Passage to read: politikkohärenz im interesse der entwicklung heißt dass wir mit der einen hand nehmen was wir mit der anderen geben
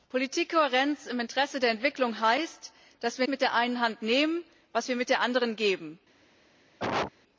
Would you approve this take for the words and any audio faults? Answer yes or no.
no